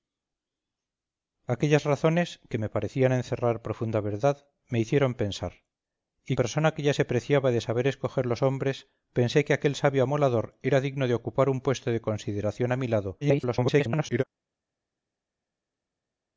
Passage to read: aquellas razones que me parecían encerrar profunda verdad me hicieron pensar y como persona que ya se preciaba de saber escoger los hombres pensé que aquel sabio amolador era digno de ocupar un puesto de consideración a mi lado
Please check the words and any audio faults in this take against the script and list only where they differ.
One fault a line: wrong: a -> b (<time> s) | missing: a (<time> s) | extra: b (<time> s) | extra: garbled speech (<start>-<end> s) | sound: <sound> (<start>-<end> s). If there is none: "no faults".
missing: como (6.4 s)
extra: garbled speech (13.2-14.2 s)